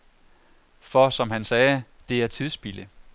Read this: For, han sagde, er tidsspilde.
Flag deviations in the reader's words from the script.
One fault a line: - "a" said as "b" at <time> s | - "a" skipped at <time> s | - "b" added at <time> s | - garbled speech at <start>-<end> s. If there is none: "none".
- "som" added at 1.1 s
- "det" added at 2.1 s